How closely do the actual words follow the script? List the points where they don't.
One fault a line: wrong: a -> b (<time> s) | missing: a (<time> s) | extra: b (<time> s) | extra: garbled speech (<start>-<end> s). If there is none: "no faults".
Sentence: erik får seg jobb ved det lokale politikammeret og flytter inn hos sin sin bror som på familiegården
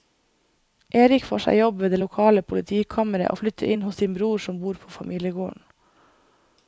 missing: sin (4.2 s)
extra: bor (4.6 s)